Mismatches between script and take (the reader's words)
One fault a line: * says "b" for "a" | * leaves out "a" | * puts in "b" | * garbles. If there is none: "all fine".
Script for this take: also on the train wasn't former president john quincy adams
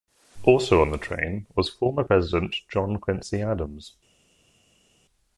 * says "was" for "wasn't"